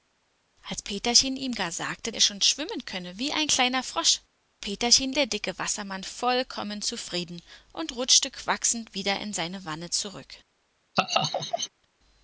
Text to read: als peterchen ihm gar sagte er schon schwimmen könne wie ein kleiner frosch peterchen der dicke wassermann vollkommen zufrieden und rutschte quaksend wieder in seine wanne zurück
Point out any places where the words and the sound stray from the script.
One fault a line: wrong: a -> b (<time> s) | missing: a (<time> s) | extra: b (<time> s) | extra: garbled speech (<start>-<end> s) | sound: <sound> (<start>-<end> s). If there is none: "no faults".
sound: laugh (11.0-11.7 s)